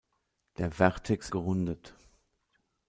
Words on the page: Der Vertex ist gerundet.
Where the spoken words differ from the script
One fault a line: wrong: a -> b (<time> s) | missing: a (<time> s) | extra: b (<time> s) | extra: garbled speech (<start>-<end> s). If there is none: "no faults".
missing: ist (1.3 s)